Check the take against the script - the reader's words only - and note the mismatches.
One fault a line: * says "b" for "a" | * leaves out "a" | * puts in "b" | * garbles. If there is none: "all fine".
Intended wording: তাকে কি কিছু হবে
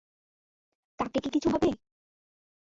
all fine